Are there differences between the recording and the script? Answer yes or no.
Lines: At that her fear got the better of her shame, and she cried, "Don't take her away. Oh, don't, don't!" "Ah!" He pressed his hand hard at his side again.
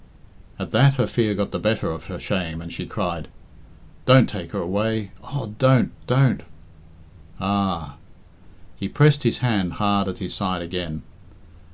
no